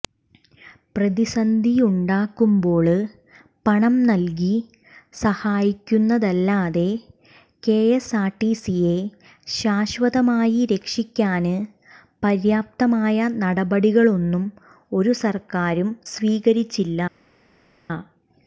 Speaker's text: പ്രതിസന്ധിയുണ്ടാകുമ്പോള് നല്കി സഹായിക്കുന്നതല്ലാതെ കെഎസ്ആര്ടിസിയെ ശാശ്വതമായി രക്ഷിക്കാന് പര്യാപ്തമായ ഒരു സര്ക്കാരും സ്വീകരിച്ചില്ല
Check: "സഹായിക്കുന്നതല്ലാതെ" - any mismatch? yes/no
no